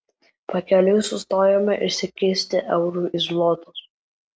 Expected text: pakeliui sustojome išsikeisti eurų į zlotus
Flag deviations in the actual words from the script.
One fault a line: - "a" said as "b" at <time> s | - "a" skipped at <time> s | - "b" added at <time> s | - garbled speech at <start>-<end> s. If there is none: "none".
none